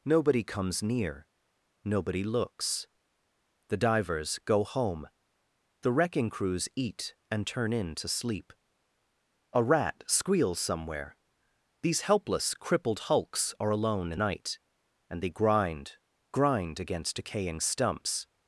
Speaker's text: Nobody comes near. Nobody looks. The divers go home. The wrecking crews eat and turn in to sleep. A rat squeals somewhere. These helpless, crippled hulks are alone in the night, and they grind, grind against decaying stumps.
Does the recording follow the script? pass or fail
fail